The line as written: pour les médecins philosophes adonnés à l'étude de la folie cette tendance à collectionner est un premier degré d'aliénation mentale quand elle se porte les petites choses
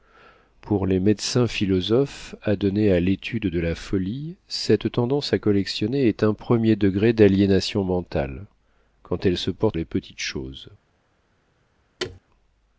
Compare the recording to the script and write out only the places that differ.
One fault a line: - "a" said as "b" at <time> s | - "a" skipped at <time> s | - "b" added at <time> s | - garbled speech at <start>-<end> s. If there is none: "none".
none